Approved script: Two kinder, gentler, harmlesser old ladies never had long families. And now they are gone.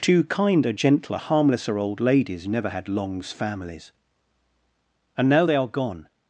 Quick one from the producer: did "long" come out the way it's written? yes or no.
no